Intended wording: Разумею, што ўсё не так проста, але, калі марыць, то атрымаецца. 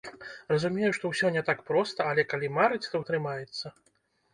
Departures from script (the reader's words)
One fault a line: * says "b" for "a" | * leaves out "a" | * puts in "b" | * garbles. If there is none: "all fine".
all fine